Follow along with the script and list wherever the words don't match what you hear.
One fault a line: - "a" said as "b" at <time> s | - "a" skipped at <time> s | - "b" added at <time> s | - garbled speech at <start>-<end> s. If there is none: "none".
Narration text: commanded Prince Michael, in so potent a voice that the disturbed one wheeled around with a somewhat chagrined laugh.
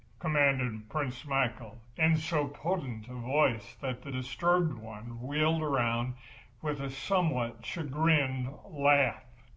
none